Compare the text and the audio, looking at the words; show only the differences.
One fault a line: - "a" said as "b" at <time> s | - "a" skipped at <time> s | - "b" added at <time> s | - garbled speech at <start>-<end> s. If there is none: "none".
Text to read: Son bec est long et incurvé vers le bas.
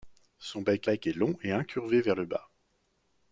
- "bec" added at 0.8 s